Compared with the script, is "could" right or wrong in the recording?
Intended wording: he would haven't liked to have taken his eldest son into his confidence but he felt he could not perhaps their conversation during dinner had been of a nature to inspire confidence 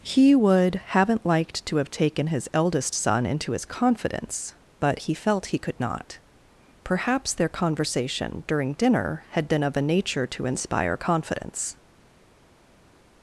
right